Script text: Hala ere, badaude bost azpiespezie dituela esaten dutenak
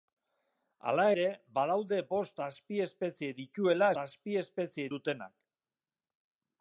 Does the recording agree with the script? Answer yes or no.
no